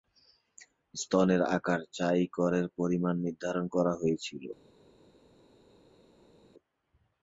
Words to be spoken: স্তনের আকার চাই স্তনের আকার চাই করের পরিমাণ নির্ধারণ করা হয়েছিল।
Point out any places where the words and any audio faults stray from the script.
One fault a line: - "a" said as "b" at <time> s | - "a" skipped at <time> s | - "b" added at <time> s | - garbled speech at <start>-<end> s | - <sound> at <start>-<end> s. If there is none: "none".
- "স্তনের আকার চাই" skipped at 2.2 s